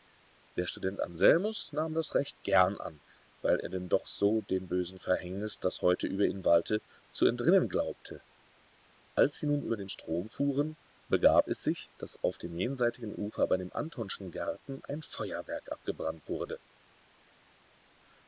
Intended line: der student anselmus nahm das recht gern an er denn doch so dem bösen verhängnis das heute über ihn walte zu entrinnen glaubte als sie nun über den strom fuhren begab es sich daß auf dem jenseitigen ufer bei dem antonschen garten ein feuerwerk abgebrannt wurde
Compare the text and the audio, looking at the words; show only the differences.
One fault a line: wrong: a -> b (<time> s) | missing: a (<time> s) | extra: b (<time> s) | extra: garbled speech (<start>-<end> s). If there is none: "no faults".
extra: weil (3.4 s)